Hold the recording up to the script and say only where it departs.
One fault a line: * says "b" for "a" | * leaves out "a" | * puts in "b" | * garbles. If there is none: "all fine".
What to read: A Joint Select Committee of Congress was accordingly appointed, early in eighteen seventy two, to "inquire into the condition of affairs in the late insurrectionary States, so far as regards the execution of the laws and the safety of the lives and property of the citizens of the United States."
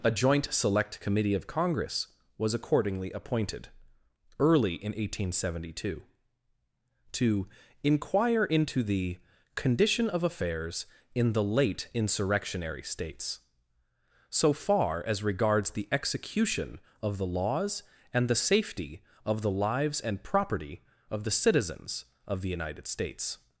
all fine